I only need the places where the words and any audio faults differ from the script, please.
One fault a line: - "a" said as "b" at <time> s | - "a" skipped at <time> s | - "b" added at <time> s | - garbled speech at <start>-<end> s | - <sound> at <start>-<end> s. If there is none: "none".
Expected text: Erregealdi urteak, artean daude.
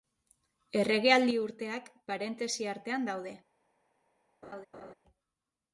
- "parentesi" added at 2.1 s
- laugh at 4.4-4.9 s